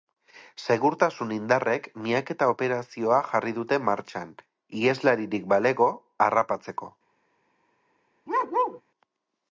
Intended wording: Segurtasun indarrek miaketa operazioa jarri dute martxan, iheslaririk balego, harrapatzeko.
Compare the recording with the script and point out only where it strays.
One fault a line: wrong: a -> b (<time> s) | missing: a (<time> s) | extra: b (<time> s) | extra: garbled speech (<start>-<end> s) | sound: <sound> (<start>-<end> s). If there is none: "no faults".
sound: bark (8.3-8.8 s)